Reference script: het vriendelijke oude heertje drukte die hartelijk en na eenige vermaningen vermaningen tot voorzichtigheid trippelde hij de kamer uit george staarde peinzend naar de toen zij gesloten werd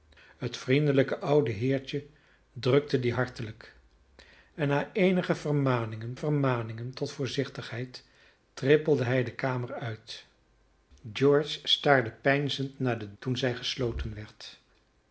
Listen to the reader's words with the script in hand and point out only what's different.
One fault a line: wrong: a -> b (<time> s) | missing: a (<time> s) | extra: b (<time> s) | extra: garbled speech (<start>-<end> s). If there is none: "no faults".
no faults